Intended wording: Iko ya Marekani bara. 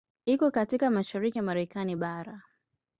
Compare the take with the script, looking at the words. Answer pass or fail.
fail